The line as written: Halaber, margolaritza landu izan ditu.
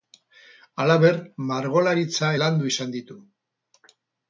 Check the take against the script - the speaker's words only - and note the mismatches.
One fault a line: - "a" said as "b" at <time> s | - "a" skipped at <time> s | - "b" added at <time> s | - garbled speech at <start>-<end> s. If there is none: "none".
none